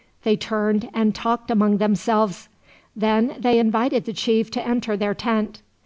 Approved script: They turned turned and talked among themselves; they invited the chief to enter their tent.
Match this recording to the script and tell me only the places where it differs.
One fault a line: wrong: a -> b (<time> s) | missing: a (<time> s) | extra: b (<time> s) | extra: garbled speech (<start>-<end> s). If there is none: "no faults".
missing: turned (0.9 s)
extra: then (3.0 s)